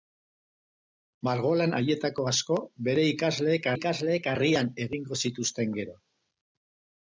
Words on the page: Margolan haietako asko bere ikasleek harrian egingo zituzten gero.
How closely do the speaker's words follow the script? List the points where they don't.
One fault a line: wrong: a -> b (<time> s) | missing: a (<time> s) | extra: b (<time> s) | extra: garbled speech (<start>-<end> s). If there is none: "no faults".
extra: ikasleek (3.8 s)